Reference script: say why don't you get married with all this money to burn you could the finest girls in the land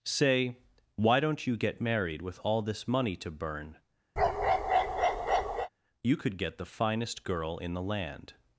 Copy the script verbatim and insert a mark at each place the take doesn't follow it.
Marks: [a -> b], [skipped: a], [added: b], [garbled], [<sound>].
say why don't you get married with all this money to burn [bark] you could [added: get] the finest [girls -> girl] in the land